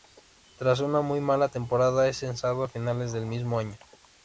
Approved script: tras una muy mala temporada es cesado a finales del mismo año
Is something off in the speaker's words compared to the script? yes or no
no